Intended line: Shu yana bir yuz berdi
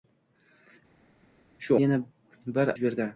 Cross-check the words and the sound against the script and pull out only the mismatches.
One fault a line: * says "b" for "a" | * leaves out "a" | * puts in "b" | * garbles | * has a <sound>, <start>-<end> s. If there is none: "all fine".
all fine